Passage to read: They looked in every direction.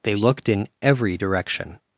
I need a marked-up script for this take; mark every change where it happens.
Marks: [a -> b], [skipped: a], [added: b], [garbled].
They looked in every direction.